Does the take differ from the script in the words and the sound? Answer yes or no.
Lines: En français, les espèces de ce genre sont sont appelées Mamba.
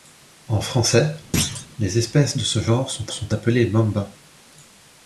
yes